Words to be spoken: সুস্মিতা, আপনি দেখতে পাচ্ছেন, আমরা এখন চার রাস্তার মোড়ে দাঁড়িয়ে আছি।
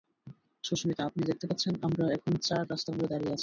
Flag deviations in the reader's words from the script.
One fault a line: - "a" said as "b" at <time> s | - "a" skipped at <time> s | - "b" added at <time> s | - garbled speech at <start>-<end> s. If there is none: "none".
none